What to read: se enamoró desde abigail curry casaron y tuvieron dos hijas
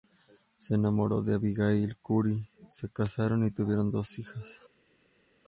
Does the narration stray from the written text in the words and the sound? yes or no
yes